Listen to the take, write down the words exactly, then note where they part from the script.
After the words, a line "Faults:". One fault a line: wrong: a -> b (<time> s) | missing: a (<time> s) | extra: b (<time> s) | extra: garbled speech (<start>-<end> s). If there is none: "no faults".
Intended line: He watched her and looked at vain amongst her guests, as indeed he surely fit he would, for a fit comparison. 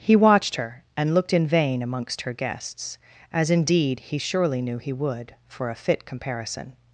He watched her and looked in vain amongst her guests, as indeed he surely knew he would, for a fit comparison.
Faults:
wrong: at -> in (1.3 s)
wrong: fit -> knew (4.6 s)